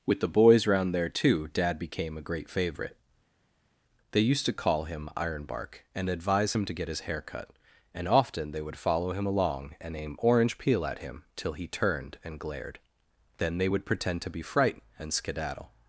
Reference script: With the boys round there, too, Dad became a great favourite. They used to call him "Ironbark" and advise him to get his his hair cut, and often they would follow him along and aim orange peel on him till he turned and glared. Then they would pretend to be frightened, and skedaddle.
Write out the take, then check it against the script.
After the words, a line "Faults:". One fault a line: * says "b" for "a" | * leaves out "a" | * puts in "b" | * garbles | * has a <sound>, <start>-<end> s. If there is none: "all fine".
With the boys round there, too, Dad became a great favourite. They used to call him "Ironbark" and advise him to get his hair cut, and often they would follow him along and aim orange peel at him till he turned and glared. Then they would pretend to be frightened, and skedaddle.
Faults:
* leaves out "his"
* says "at" for "on"